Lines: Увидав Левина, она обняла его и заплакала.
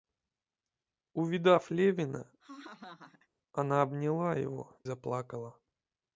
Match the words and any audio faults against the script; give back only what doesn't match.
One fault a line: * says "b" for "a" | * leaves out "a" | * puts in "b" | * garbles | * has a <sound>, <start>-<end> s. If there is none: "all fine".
* has a laugh, 2.4-3.3 s
* leaves out "и"